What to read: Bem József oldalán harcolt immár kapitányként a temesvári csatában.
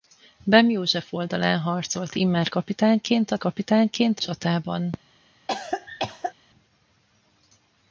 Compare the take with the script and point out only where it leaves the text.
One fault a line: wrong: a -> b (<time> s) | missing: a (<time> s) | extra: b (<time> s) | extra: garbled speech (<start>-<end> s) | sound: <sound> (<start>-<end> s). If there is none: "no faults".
wrong: temesvári -> kapitányként (3.4 s)
sound: cough (5.5-6.3 s)